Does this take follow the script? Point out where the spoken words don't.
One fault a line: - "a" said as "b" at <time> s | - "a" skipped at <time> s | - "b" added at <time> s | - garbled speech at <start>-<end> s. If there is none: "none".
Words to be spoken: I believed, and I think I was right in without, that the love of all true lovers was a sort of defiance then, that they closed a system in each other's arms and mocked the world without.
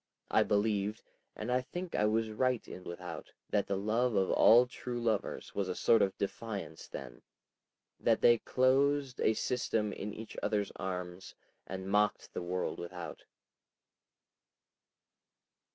none